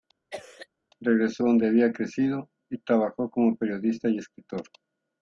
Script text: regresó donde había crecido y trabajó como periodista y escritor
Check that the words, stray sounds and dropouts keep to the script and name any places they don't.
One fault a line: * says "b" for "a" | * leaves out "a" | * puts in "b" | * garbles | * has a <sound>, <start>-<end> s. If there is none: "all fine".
* has a cough, 0.3-0.7 s